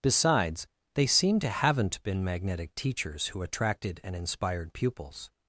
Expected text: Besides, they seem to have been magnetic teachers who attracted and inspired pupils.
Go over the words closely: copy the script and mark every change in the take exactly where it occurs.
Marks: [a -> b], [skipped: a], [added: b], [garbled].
Besides, they seem to [have -> haven't] been magnetic teachers who attracted and inspired pupils.